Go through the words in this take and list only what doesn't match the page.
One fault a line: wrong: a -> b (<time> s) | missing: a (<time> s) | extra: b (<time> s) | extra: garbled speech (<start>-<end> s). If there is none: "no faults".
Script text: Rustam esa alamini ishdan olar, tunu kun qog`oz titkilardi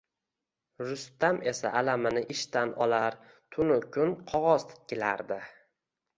no faults